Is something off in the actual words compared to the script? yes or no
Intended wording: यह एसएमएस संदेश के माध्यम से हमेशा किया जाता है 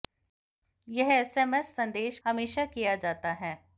yes